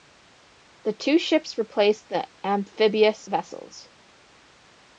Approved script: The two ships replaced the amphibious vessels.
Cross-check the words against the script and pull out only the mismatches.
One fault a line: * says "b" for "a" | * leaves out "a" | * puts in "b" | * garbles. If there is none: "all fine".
all fine